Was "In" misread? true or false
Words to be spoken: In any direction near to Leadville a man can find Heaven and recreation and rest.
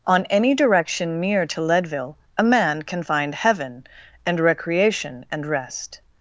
true